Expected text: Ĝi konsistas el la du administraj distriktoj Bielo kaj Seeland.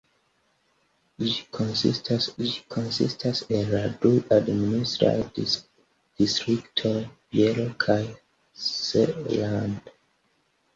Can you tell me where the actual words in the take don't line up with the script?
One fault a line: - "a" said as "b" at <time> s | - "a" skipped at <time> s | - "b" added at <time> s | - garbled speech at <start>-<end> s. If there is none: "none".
- "ĝi konsistas" added at 2.4 s